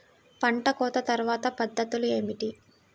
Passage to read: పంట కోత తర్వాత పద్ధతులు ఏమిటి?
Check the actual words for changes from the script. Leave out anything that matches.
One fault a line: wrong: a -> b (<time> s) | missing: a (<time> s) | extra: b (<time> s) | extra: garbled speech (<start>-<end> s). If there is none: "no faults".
no faults